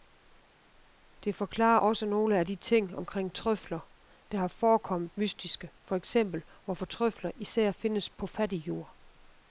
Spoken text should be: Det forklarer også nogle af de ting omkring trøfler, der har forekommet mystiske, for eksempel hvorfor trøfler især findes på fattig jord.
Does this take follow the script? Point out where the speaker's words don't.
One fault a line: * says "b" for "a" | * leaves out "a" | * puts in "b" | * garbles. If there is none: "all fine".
all fine